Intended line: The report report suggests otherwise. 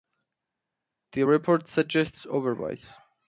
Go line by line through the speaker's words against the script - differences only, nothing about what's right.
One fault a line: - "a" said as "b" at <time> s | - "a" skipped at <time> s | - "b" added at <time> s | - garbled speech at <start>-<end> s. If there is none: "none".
- "report" skipped at 1.7 s